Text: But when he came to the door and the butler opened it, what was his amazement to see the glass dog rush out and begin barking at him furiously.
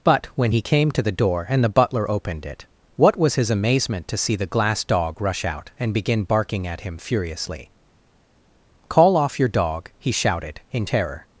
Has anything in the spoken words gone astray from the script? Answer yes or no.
yes